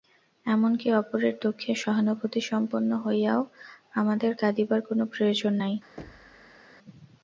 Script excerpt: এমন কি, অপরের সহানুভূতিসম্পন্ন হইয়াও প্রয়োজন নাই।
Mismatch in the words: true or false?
true